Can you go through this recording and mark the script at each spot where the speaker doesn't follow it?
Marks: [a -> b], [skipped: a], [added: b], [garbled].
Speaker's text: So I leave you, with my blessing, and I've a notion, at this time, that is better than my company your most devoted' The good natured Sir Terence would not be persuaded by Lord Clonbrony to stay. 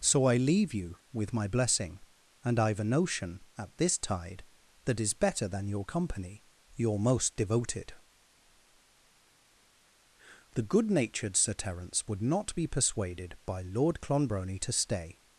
So I leave you, with my blessing, and I've a notion, at this [time, -> tide] that is better than [my -> your] company your most devoted' The good natured Sir Terence would not be persuaded by Lord Clonbrony to stay.